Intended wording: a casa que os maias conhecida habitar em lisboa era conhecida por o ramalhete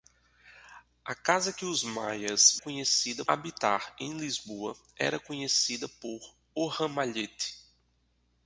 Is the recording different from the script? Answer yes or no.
no